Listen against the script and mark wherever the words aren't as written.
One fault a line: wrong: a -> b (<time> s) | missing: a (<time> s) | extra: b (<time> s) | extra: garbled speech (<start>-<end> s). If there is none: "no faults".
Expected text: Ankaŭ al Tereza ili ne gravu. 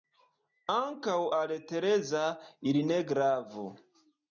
no faults